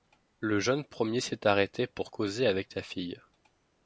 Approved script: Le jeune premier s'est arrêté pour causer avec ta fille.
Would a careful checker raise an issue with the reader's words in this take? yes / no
no